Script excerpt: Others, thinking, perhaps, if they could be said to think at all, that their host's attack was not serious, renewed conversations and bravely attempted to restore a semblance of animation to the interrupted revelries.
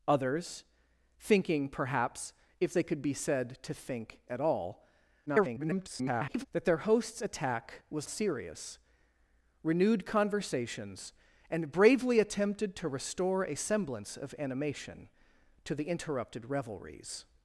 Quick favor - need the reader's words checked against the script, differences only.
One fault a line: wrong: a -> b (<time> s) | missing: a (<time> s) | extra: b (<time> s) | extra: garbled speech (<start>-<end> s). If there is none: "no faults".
extra: garbled speech (5.3-6.5 s)
missing: not (8.1 s)